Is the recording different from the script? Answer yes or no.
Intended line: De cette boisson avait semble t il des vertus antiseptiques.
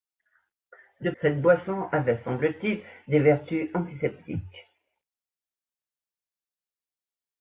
no